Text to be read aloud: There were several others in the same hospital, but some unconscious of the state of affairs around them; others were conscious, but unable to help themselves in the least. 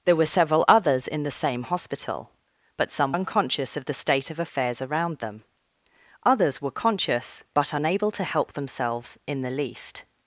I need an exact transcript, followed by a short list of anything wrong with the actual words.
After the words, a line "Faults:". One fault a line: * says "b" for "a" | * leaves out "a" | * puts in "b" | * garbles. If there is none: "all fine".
There were several others in the same hospital, but some unconscious of the state of affairs around them; others were conscious, but unable to help themselves in the least.
Faults:
all fine